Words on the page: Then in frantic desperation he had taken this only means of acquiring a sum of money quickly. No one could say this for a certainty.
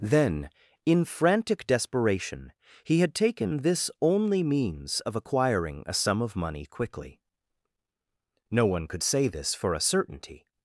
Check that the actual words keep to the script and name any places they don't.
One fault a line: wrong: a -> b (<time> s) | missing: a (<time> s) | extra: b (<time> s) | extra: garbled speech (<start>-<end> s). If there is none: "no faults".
no faults